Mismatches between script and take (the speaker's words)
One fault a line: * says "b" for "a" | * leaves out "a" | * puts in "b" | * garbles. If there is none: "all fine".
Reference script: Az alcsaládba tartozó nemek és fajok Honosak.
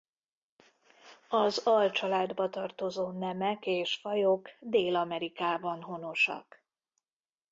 * puts in "Dél Amerikában"